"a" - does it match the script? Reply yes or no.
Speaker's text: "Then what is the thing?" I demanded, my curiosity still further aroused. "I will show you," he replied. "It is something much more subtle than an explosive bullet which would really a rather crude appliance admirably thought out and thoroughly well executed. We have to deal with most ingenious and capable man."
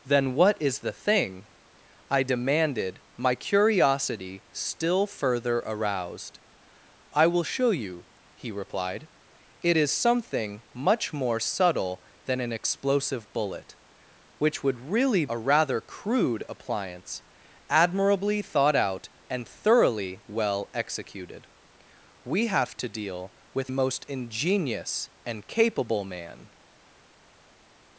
yes